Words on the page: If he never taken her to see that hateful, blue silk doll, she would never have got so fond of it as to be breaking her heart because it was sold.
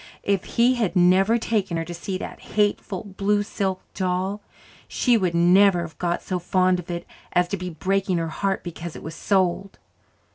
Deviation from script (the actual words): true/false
true